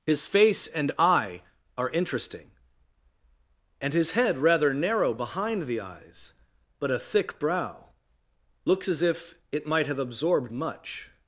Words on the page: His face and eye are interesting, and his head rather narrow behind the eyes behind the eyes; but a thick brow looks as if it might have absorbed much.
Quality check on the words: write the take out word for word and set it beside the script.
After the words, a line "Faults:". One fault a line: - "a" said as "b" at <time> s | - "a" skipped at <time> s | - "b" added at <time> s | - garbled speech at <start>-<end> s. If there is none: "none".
His face and eye are interesting, and his head rather narrow behind the eyes; but a thick brow looks as if it might have absorbed much.
Faults:
- "behind the eyes" skipped at 6.3 s